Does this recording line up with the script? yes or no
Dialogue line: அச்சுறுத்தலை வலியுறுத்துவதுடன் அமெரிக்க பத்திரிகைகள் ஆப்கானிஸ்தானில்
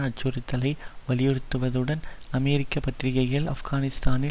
yes